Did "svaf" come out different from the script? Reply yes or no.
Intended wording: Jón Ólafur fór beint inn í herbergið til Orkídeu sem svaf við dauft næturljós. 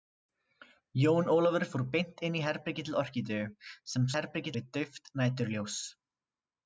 yes